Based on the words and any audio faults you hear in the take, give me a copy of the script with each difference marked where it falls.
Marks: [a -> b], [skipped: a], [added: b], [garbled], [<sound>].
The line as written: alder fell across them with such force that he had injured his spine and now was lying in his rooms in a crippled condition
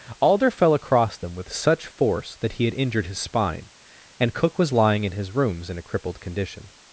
alder fell across them with such force that he had injured his spine and [now -> cook] was lying in his rooms in a crippled condition